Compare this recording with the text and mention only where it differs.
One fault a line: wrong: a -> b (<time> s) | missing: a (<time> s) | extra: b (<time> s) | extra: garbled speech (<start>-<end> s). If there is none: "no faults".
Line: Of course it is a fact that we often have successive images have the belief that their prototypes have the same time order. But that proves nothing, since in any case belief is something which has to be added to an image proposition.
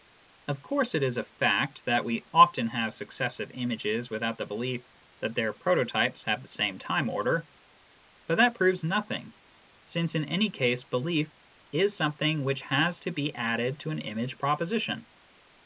wrong: have -> without (4.1 s)